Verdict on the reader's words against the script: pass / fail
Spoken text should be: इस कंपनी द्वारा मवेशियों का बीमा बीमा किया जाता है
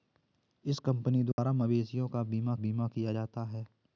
pass